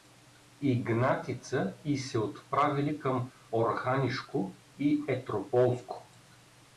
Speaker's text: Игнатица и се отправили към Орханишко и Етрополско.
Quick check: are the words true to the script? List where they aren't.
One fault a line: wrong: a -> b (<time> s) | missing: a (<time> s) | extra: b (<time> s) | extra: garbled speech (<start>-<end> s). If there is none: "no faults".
no faults